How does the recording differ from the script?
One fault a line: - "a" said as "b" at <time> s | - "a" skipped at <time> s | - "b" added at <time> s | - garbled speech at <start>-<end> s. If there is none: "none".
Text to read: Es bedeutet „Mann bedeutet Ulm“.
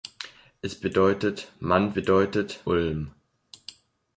none